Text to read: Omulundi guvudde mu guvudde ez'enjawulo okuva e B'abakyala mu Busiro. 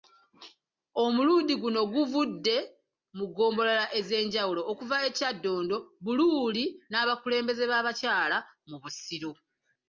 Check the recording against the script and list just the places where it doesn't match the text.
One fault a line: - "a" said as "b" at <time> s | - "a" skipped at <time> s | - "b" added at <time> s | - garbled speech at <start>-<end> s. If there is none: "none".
- "guno" added at 1.6 s
- "guvudde" said as "ggombolola" at 3.3 s
- "Kyaddondo Buluuli n'abakulembeze" added at 5.2 s